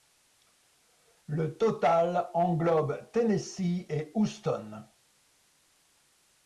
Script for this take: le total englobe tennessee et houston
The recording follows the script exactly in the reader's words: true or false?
true